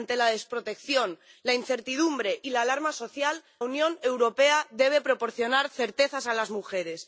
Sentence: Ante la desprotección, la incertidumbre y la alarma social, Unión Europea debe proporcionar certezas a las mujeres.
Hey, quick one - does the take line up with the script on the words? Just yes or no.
yes